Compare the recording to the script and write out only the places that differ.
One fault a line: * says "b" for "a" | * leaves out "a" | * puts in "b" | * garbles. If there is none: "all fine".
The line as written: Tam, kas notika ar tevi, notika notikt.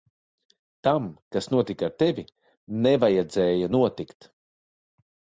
* says "nevajadzēja" for "notika"